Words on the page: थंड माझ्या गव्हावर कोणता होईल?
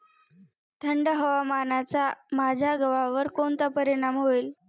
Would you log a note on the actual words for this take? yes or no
yes